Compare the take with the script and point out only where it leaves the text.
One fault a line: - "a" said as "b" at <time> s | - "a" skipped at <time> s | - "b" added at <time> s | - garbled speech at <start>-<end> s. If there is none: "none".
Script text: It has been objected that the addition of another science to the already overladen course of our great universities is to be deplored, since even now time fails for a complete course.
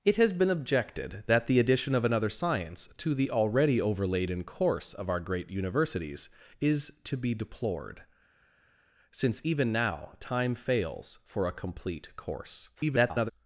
- garbled speech at 12.7-13.3 s